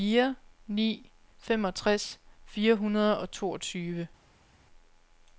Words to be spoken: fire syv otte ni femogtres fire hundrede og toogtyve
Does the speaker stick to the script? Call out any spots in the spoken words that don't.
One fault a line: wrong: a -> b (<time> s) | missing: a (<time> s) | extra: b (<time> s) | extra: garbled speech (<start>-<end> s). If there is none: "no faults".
missing: syv otte (0.3 s)